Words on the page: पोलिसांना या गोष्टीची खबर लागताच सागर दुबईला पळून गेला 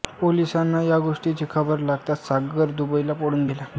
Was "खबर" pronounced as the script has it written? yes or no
yes